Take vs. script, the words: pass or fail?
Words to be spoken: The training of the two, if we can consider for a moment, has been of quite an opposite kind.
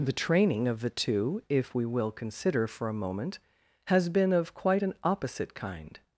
fail